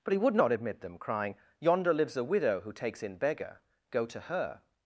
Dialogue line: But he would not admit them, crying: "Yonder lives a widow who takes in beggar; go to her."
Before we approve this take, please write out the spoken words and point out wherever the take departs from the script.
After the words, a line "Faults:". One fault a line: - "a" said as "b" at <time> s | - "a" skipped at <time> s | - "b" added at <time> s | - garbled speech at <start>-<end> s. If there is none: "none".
But he would not admit them, crying: "Yonder lives a widow who takes in beggar; go to her."
Faults:
none